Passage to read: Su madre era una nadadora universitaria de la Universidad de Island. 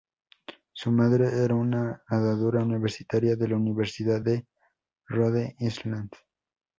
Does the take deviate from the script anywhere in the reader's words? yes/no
yes